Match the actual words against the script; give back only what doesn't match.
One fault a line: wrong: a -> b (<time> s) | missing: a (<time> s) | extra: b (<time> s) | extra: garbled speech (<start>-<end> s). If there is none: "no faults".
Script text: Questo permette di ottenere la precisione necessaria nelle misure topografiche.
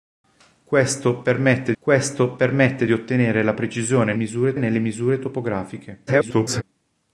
extra: questo permette (1.8 s)
wrong: necessaria -> misure (4.1 s)
extra: garbled speech (6.1-6.6 s)